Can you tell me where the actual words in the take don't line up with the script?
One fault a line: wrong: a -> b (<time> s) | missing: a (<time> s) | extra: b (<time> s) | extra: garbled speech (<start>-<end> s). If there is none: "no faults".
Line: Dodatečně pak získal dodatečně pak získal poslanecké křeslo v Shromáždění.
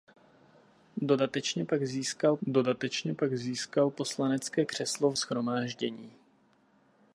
no faults